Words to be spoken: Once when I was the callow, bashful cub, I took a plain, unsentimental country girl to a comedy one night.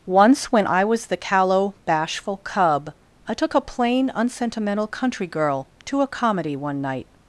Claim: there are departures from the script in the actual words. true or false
false